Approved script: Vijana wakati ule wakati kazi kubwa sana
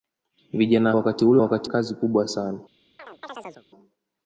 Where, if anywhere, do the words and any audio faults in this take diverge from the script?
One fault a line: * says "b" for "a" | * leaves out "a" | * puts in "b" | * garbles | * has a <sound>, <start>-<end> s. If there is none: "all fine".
* has a chirp, 3.0-3.7 s